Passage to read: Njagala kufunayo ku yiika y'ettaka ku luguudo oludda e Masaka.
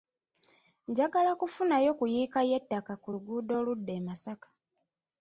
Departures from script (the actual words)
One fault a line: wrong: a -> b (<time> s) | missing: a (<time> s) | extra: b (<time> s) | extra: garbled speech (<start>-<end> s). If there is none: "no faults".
no faults